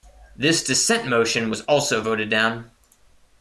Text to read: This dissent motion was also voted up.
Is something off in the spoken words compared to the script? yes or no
yes